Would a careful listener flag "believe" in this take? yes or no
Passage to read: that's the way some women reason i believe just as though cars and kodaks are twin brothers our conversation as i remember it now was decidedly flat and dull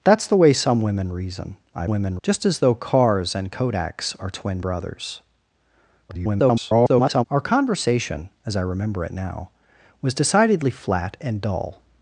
yes